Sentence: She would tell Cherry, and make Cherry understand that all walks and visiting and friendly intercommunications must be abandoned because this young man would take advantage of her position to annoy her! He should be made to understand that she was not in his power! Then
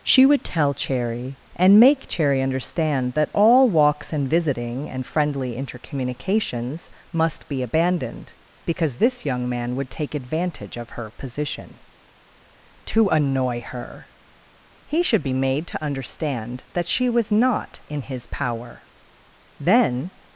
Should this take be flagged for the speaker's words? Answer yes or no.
no